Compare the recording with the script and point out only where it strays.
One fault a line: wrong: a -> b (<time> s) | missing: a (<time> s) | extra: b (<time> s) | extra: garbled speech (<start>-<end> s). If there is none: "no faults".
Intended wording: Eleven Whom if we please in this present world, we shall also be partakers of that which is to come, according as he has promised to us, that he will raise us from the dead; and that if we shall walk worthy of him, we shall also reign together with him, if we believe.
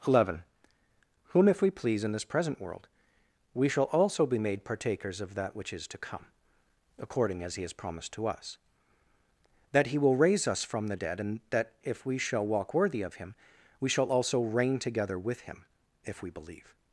extra: made (4.4 s)